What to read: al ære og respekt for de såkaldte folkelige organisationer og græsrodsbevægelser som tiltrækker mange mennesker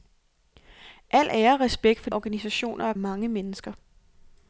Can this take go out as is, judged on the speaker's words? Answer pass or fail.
fail